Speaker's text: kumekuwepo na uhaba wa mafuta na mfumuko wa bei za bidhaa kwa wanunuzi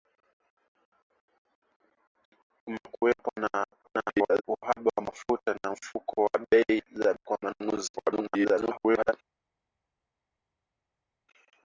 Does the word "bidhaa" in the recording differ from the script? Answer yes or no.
yes